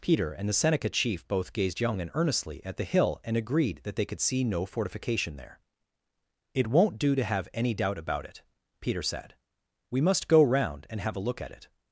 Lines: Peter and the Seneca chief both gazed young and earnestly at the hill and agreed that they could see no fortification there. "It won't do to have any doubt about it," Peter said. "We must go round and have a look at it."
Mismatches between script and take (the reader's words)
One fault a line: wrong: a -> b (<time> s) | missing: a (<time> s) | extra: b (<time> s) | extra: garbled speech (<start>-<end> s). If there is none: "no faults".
no faults